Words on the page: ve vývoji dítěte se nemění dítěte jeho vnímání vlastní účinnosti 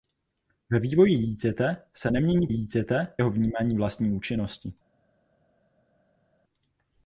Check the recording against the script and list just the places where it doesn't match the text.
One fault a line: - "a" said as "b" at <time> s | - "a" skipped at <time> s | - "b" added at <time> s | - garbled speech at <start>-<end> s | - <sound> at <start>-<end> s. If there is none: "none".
none